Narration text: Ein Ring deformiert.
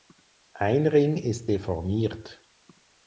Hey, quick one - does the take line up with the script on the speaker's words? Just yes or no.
no